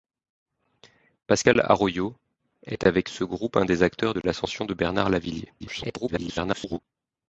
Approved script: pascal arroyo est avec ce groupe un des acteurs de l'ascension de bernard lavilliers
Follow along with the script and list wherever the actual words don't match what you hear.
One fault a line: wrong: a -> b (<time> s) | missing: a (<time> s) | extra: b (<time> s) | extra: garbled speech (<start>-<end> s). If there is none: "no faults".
extra: garbled speech (5.6-6.8 s)